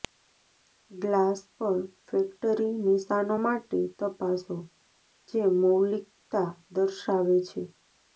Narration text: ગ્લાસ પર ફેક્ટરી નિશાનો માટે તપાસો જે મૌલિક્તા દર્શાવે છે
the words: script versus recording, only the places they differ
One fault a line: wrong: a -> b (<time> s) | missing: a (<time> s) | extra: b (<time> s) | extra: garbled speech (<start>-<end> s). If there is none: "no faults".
no faults